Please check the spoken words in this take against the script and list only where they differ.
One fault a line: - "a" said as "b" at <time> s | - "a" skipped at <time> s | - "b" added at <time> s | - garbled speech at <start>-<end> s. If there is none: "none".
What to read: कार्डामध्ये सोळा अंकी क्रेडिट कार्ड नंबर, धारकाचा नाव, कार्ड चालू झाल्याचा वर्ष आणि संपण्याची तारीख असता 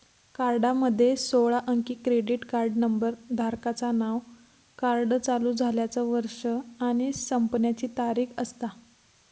none